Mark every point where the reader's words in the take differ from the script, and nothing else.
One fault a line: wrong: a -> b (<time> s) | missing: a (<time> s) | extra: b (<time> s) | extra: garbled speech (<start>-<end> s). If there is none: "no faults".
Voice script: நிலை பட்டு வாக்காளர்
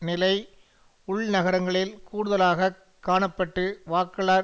extra: உள்நகரங்களில் கூடுதலாக காண (1.1 s)